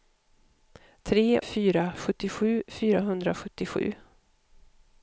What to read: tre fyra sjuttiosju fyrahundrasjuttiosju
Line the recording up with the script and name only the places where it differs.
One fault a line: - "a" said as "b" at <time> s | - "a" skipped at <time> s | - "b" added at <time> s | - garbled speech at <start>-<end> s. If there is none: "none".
none